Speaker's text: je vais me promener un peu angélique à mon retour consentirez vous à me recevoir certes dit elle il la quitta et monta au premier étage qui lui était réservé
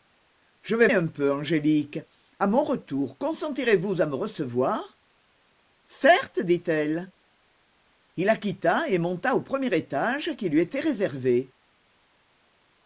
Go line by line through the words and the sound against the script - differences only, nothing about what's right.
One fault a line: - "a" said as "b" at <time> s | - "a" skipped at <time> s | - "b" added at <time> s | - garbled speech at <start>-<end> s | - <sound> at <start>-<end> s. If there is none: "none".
- "me promener" skipped at 0.9 s